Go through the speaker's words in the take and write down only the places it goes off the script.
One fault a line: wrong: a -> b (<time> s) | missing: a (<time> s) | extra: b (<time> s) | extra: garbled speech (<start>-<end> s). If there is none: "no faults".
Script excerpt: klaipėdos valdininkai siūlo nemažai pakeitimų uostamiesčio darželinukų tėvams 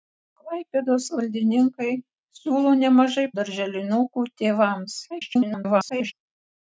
missing: pakeitimų uostamiesčio (3.3 s)
extra: garbled speech (5.1-6.1 s)